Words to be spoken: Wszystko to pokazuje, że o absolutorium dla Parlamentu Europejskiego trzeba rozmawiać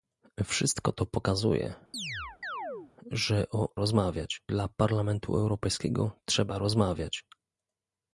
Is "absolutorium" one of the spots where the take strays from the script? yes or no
yes